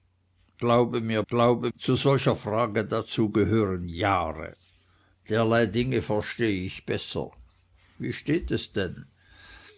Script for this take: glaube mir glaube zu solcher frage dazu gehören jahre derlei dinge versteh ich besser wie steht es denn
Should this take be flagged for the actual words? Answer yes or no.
no